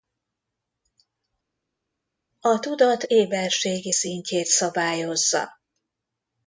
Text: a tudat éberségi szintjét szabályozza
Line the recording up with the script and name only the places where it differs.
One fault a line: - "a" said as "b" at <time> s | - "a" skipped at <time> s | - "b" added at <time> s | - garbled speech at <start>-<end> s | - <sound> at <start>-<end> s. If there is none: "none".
none